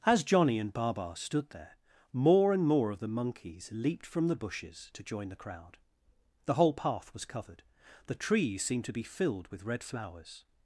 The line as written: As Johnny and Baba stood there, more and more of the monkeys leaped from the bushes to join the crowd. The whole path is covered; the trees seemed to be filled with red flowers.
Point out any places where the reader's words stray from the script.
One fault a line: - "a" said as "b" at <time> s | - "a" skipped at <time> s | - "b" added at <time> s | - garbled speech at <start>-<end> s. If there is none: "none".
- "is" said as "was" at 7.1 s